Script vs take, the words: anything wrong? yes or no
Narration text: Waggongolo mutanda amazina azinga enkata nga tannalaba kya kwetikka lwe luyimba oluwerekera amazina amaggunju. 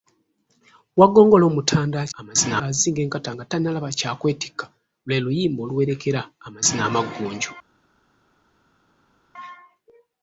no